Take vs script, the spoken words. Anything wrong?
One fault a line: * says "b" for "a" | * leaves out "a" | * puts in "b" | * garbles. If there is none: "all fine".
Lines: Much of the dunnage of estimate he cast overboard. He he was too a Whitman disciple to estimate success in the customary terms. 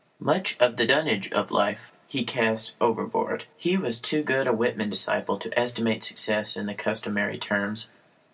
* says "life" for "estimate"
* leaves out "he"
* puts in "good"